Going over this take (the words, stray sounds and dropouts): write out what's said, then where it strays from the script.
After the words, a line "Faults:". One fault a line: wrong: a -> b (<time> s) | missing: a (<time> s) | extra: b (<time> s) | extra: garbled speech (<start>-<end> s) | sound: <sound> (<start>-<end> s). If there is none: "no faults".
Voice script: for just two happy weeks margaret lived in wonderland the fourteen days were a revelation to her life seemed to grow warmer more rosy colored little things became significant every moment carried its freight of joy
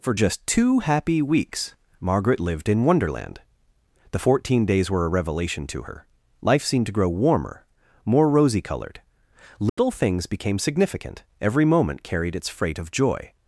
for just two happy weeks margaret lived in wonderland the fourteen days were a revelation to her life seemed to grow warmer more rosy colored little things became significant every moment carried its freight of joy
Faults:
sound: dropout (9.7-9.8 s)